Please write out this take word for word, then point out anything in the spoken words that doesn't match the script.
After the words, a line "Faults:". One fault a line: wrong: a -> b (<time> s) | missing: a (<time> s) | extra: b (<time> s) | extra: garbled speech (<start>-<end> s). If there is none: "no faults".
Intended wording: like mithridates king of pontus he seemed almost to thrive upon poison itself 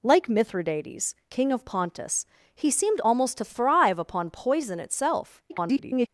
like mithridates king of pontus he seemed almost to thrive upon poison itself [garbled]
Faults:
extra: garbled speech (5.5-6.1 s)